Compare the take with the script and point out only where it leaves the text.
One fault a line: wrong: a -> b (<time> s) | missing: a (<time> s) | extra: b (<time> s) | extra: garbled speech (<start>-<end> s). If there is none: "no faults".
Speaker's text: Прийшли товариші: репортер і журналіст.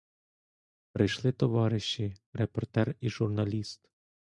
no faults